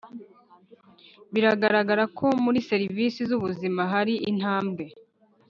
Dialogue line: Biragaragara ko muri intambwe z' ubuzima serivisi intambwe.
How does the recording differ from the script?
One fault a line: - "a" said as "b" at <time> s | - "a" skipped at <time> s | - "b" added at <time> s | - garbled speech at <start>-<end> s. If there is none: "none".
- "intambwe" said as "serivisi" at 2.7 s
- "serivisi" said as "hari" at 3.9 s